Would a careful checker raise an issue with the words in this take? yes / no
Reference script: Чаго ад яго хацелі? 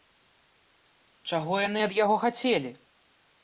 yes